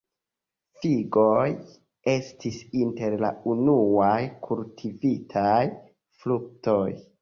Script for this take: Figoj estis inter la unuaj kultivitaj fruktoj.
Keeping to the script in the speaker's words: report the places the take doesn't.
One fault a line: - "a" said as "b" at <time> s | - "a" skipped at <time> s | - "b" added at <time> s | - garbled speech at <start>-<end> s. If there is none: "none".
none